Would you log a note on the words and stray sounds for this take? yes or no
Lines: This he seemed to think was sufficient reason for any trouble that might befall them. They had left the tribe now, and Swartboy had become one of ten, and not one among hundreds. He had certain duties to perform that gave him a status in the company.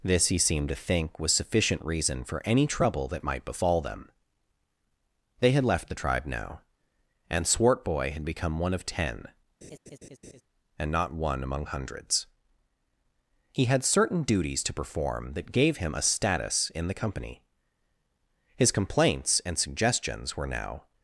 yes